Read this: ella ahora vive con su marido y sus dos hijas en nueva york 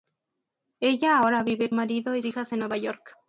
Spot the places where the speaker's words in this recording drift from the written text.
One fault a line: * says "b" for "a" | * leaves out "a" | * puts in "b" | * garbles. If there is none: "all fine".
* leaves out "con su"
* leaves out "sus dos"